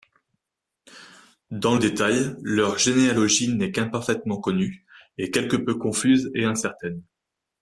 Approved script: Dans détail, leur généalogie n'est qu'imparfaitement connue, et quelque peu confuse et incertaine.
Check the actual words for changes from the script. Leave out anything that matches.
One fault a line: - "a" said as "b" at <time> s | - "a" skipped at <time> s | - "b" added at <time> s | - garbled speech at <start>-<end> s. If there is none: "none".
none